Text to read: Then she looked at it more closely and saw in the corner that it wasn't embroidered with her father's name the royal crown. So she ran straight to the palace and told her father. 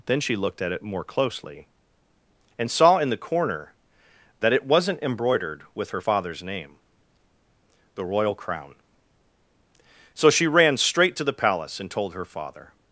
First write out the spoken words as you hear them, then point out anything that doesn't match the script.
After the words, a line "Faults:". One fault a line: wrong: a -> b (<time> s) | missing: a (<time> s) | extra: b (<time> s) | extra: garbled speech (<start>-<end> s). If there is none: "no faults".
Then she looked at it more closely and saw in the corner that it wasn't embroidered with her father's name the royal crown. So she ran straight to the palace and told her father.
Faults:
no faults